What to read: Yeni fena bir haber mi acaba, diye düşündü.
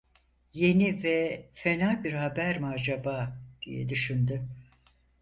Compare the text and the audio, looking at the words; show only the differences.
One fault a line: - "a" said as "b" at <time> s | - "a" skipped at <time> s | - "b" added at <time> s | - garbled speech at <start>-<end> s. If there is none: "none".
- "ve" added at 1.0 s